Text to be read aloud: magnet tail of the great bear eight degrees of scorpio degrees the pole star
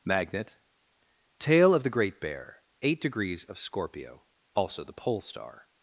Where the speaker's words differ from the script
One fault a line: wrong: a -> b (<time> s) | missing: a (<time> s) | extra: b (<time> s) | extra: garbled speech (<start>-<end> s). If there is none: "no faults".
wrong: degrees -> also (4.5 s)